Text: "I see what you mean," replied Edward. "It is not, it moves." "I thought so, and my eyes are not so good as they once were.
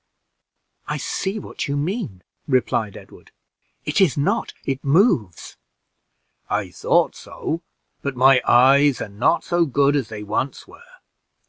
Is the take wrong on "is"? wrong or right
right